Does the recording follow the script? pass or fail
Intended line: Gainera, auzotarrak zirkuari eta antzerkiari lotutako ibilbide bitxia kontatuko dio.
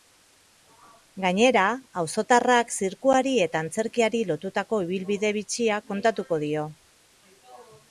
pass